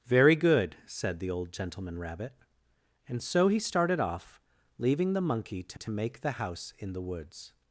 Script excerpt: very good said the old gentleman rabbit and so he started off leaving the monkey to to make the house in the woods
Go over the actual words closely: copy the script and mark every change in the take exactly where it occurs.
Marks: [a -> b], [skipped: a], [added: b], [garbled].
very good said the old gentleman rabbit and so he started off leaving the monkey to to make the house in the woods